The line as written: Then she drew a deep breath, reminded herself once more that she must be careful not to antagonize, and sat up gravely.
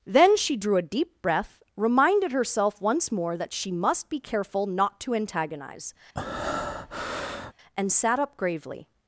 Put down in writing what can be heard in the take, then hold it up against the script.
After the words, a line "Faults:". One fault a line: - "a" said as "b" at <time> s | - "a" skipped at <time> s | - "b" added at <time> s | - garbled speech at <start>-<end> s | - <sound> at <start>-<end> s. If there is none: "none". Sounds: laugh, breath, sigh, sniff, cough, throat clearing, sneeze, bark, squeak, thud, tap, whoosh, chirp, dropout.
Then she drew a deep breath, reminded herself once more that she must be careful not to antagonize, and sat up gravely.
Faults:
- breath at 6.1-7.5 s